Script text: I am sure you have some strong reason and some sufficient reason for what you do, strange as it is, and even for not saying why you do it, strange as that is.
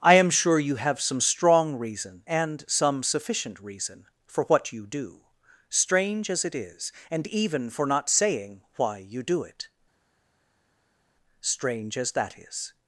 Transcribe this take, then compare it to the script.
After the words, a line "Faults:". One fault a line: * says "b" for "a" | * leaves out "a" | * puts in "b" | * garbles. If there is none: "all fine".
I am sure you have some strong reason and some sufficient reason for what you do, strange as it is, and even for not saying why you do it, strange as that is.
Faults:
all fine